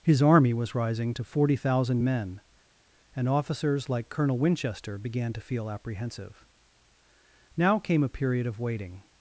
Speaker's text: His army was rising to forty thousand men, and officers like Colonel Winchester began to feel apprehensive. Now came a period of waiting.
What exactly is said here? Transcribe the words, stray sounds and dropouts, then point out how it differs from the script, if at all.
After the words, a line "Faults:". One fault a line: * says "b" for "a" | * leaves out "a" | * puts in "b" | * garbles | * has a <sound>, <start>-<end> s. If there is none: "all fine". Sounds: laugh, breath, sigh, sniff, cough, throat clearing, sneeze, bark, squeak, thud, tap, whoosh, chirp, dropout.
His army was rising to forty thousand men, and officers like Colonel Winchester began to feel apprehensive. Now came a period of waiting.
Faults:
all fine